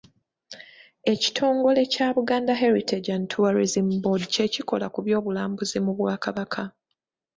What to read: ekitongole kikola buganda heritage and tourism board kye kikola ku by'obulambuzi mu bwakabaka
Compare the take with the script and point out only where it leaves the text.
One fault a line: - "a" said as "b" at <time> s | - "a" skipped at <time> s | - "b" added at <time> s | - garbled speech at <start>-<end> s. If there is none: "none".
- "kikola" said as "kya" at 1.9 s